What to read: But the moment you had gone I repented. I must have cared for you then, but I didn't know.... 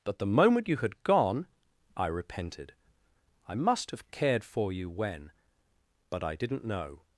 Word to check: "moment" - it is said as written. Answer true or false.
true